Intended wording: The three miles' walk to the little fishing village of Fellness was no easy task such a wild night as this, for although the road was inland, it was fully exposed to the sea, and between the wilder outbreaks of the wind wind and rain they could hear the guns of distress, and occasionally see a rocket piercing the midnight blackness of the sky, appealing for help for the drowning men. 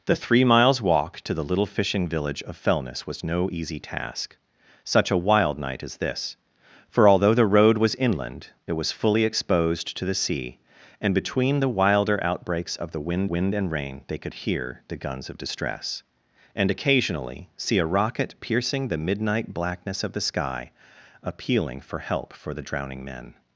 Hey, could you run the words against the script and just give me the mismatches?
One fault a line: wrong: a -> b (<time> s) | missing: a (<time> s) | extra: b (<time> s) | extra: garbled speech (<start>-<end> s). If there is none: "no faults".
no faults